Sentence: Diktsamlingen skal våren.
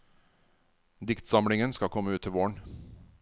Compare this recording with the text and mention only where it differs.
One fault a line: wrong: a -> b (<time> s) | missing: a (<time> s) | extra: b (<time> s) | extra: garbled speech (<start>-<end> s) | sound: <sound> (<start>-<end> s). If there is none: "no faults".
extra: komme ut til (1.9 s)